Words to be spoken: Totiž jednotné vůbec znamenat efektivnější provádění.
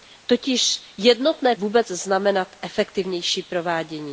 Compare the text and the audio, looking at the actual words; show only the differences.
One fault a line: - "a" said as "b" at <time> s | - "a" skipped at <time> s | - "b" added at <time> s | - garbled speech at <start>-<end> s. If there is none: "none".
none